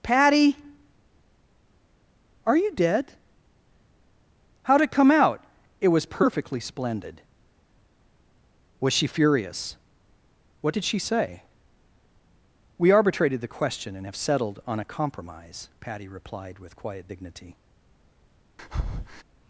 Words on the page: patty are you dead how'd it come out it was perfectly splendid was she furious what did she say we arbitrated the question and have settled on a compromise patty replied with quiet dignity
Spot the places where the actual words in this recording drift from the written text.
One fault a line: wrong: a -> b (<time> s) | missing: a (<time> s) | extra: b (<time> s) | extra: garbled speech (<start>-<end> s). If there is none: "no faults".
no faults